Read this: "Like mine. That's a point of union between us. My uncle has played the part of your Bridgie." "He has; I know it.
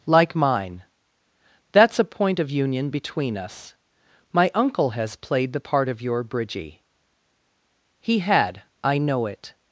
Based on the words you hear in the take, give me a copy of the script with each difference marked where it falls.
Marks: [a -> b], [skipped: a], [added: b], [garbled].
"Like mine. That's a point of union between us. My uncle has played the part of your Bridgie." "He [has; -> had] I know it.